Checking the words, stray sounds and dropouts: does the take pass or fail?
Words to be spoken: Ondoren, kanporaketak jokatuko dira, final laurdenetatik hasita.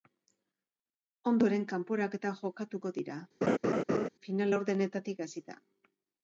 fail